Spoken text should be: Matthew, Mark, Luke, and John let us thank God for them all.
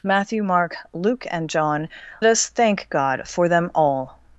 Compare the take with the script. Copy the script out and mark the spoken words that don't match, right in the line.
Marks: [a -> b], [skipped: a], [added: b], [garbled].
Matthew, Mark, Luke, and John [skipped: let] us thank God for them all.